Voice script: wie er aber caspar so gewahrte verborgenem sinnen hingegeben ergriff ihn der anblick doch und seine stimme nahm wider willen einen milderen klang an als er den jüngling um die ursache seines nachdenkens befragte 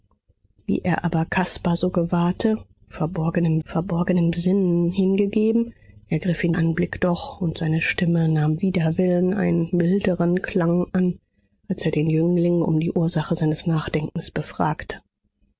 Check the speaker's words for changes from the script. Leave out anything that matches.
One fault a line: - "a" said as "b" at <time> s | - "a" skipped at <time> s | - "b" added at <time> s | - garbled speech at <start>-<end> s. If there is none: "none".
- "verborgenem" added at 3.6 s
- "der" skipped at 6.5 s